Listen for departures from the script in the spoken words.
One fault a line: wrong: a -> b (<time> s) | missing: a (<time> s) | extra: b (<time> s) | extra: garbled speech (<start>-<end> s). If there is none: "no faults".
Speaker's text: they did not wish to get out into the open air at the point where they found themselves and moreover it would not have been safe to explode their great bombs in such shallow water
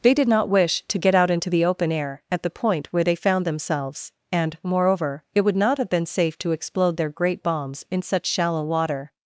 no faults